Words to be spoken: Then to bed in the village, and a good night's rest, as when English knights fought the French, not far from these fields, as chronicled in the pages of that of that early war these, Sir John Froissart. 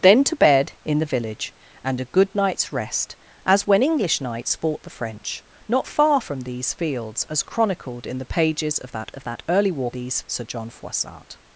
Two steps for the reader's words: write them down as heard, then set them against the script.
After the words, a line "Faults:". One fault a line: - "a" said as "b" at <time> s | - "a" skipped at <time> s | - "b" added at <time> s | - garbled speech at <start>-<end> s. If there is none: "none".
Then to bed in the village, and a good night's rest, as when English knights fought the French, not far from these fields, as chronicled in the pages of that of that early war these, Sir John Froissart.
Faults:
none